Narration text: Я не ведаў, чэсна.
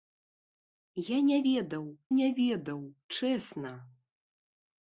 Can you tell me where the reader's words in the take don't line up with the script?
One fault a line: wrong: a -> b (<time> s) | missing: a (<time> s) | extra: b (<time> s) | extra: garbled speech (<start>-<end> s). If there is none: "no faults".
extra: не ведаў (2.2 s)